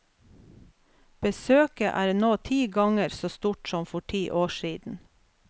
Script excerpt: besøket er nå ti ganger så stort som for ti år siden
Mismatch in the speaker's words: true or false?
false